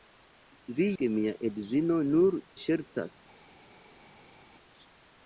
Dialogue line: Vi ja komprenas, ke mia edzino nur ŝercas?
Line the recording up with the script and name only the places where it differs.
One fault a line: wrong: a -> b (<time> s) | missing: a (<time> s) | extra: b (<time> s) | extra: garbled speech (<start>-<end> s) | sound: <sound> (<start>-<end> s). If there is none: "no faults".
missing: ja komprenas (0.9 s)